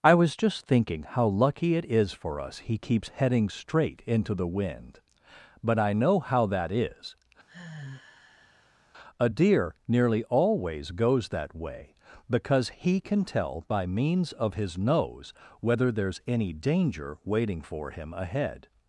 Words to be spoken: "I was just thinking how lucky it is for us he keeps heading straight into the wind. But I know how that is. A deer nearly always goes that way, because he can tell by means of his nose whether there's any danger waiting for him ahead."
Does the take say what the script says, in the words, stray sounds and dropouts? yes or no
no